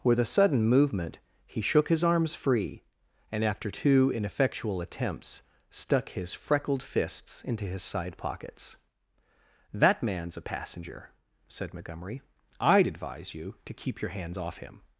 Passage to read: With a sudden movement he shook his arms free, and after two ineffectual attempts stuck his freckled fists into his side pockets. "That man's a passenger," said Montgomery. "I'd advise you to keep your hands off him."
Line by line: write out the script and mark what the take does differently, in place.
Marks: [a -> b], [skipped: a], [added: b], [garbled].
With a sudden movement he shook his arms free, and after two ineffectual attempts stuck his freckled fists into his side pockets. "That man's a passenger," said Montgomery. "I'd advise you to keep your hands off him."